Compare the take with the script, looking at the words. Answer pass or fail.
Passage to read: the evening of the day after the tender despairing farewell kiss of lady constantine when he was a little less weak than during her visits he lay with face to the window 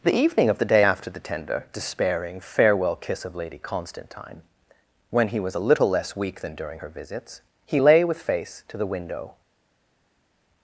pass